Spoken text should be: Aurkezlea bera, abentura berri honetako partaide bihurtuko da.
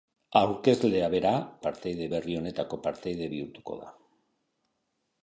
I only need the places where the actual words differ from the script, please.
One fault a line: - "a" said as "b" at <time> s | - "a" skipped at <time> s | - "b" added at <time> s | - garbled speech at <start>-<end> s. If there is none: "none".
- "abentura" said as "partaide" at 1.6 s